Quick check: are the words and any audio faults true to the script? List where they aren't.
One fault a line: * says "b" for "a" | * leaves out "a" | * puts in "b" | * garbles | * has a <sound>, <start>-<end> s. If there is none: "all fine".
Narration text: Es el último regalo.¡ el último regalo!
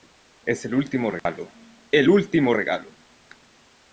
* has a dropout, 1.2-1.3 s